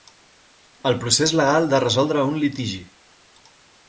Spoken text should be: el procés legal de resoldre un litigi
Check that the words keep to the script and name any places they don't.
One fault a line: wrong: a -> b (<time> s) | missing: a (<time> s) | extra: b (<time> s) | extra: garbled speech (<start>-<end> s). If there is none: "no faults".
no faults